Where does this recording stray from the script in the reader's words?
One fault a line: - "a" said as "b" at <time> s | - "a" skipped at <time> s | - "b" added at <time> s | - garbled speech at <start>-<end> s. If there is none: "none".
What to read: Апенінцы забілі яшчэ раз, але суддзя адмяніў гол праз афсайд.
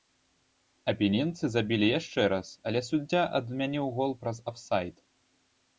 none